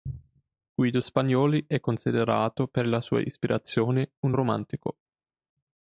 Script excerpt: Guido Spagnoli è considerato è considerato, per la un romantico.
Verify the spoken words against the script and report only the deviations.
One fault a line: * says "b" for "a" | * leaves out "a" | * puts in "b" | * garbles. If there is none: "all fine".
* says "per la sua ispirazione" for "è considerato per la"